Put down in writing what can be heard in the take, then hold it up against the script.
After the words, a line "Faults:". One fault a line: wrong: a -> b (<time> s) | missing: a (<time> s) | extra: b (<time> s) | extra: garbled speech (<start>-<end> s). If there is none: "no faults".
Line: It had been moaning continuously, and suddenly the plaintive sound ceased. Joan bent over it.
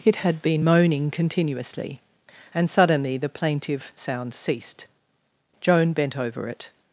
It had been moaning continuously, and suddenly the plaintive sound ceased. Joan bent over it.
Faults:
no faults